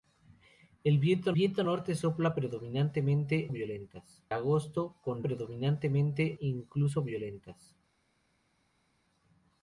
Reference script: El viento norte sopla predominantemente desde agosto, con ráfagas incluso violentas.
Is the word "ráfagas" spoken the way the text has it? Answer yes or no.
no